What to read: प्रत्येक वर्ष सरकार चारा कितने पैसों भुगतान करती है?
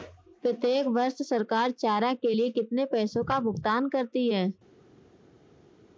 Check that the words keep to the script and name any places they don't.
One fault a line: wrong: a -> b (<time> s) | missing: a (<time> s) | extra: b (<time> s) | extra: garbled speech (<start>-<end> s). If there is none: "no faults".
extra: के लिए (2.1 s)
extra: का (3.2 s)